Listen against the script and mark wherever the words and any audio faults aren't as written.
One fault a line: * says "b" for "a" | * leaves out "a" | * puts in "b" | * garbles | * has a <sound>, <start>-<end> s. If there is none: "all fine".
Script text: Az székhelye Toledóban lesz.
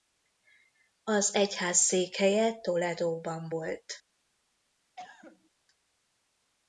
* puts in "egyház"
* says "volt" for "lesz"
* has a cough, 5.0-5.5 s